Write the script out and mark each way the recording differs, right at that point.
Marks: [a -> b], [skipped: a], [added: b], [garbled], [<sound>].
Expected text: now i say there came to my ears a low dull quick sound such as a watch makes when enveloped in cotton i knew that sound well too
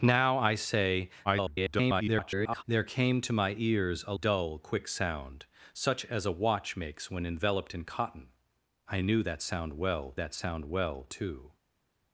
now i say [garbled] there came to my ears a [skipped: low] dull quick sound such as a watch makes when enveloped in cotton i knew that sound well [added: that sound well] too